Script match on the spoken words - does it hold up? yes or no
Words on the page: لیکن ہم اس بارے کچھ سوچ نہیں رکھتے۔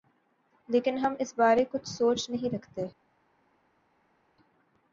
yes